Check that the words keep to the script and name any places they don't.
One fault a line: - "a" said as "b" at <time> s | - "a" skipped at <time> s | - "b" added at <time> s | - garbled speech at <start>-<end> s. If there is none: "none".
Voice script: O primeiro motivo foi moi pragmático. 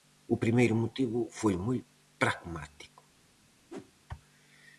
none